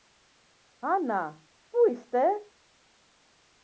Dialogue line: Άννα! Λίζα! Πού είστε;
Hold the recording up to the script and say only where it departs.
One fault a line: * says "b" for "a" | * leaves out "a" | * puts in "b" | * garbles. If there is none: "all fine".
* leaves out "Λίζα"